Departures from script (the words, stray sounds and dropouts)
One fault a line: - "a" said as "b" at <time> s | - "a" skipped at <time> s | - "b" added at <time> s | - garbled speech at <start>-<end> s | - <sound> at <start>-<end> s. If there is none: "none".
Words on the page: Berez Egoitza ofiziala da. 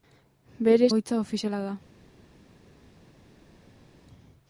none